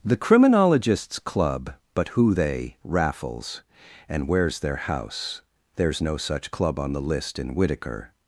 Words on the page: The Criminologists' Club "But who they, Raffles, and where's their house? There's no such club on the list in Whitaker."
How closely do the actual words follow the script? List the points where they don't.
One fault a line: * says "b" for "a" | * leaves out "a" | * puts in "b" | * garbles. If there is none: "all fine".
all fine